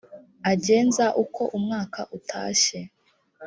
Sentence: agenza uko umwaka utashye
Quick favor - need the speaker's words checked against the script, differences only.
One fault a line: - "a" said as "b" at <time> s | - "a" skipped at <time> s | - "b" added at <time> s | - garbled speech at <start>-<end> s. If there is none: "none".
none